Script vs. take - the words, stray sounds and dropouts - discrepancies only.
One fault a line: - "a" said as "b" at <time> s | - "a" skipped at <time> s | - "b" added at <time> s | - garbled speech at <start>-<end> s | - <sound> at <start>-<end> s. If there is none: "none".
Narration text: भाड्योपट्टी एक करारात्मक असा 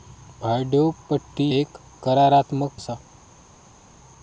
none